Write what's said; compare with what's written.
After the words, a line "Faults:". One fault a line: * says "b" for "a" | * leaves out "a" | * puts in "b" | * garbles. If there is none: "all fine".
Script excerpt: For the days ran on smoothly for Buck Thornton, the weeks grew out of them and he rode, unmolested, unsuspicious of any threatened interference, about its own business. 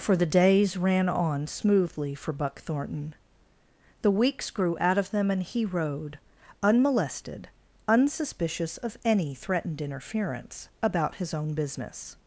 For the days ran on smoothly for Buck Thornton, the weeks grew out of them and he rode, unmolested, unsuspicious of any threatened interference, about his own business.
Faults:
* says "his" for "its"